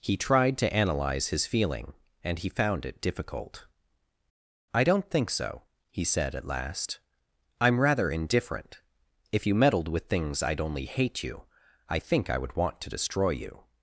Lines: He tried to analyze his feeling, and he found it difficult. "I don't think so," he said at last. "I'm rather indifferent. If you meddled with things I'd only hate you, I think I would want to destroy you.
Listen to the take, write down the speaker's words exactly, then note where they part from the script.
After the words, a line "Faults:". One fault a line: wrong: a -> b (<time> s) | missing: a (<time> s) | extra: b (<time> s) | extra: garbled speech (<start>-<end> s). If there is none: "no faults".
He tried to analyze his feeling, and he found it difficult. "I don't think so," he said at last. "I'm rather indifferent. If you meddled with things I'd only hate you, I think I would want to destroy you.
Faults:
no faults